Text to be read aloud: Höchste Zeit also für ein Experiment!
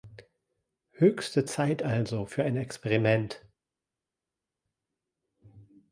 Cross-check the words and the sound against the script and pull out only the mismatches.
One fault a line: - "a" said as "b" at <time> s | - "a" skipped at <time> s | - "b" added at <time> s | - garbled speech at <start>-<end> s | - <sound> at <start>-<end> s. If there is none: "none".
none